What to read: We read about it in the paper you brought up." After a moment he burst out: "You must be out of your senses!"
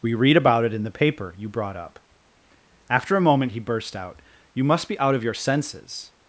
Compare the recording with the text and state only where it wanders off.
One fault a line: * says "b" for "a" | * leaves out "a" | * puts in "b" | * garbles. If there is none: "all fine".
all fine